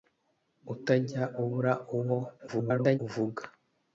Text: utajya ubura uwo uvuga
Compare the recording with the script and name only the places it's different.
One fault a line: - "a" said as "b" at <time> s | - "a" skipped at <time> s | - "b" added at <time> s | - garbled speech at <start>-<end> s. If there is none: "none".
- garbled speech at 2.5-3.0 s